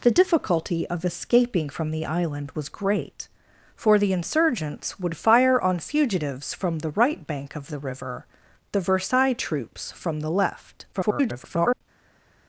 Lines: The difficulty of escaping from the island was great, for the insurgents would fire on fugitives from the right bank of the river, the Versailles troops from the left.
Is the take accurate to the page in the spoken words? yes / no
no